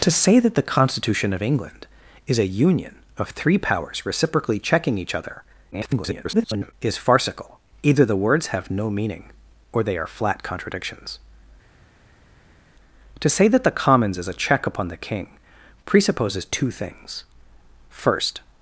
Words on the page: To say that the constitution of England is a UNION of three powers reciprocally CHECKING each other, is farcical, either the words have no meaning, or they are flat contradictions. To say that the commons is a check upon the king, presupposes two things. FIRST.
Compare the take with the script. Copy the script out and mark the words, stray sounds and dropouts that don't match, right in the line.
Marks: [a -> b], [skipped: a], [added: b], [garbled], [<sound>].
To say that the constitution of England is a UNION of three powers reciprocally CHECKING each other, [garbled] is farcical, either the words have no meaning, or they are flat contradictions. To say that the commons is a check upon the king, presupposes two things. FIRST.